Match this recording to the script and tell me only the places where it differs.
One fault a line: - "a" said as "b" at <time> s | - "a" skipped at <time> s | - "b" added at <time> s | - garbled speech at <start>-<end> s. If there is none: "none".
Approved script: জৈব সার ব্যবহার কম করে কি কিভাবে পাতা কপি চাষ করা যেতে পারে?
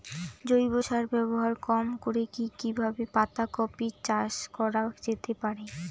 none